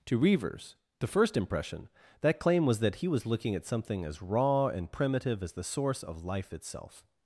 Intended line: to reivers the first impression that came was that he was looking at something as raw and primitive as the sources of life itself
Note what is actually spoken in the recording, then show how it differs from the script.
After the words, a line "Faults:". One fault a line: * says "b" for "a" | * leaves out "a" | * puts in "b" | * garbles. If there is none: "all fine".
to reivers the first impression that claim was that he was looking at something as raw and primitive as the source of life itself
Faults:
* says "claim" for "came"
* says "source" for "sources"